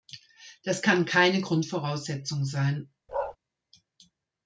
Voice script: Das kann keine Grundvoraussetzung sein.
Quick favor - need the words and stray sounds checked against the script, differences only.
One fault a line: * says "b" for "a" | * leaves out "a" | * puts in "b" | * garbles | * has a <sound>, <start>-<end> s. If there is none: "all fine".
* has a bark, 3.1-3.4 s